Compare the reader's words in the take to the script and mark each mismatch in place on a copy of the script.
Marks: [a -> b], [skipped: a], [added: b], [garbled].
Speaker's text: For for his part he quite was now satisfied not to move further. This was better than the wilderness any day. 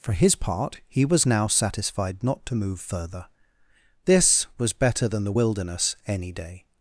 For [skipped: for] his part he [skipped: quite] was now satisfied not to move further. This was better than the wilderness any day.